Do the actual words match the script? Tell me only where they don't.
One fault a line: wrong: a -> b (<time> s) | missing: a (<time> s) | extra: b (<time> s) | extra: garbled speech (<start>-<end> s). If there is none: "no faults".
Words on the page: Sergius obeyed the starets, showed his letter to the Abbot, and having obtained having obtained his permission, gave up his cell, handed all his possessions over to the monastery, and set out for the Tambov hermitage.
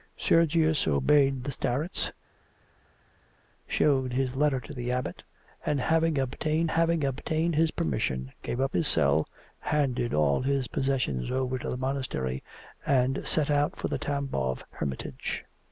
no faults